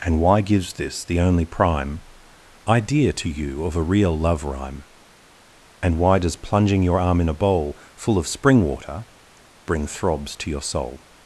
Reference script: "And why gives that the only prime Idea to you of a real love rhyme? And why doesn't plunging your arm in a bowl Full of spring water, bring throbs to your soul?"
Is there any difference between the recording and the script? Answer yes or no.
yes